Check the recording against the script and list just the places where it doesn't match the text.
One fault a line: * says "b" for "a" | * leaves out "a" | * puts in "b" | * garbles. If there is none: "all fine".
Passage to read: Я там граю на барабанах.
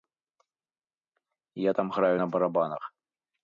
all fine